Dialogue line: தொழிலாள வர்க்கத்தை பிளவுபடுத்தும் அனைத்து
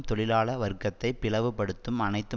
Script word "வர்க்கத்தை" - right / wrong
right